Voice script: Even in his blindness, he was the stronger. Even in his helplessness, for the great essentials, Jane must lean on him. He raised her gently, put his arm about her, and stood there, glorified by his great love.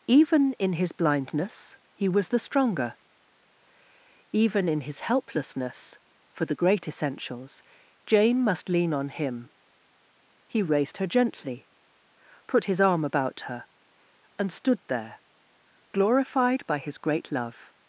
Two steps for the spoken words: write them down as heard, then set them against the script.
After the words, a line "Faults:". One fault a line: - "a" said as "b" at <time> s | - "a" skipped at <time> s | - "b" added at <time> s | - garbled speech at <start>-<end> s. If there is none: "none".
Even in his blindness, he was the stronger. Even in his helplessness, for the great essentials, Jane must lean on him. He raised her gently, put his arm about her, and stood there, glorified by his great love.
Faults:
none